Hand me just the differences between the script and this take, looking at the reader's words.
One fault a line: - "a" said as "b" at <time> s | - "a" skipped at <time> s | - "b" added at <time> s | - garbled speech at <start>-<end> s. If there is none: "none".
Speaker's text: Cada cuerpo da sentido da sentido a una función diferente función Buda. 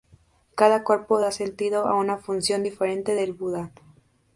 - "da sentido" skipped at 1.9 s
- "función" said as "del" at 3.1 s